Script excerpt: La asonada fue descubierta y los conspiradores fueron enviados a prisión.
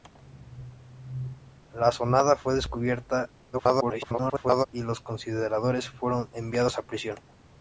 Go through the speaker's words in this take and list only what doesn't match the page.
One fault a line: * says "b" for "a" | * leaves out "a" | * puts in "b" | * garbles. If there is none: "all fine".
* garbles